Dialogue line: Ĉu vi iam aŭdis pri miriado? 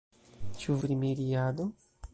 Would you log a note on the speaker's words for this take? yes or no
yes